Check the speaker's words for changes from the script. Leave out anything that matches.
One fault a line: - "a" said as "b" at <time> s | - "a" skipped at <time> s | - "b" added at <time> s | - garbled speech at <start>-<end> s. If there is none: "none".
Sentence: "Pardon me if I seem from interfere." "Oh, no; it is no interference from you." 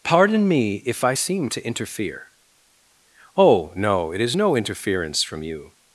- "from" said as "to" at 1.5 s